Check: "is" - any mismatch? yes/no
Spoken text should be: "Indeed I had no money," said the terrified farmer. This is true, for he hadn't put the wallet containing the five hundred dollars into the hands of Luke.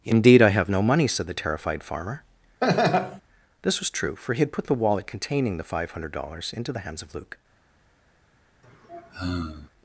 yes